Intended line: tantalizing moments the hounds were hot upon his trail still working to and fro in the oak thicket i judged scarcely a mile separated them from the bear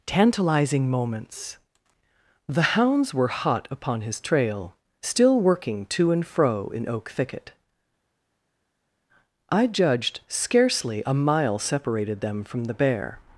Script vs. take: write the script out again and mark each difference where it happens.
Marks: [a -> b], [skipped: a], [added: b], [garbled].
tantalizing moments the hounds were hot upon his trail still working to and fro in [skipped: the] oak thicket i judged scarcely a mile separated them from the bear